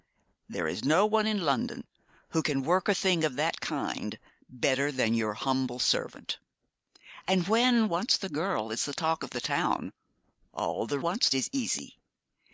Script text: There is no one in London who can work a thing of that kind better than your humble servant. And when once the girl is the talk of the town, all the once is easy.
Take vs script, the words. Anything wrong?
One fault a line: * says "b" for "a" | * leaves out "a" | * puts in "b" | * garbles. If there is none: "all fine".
all fine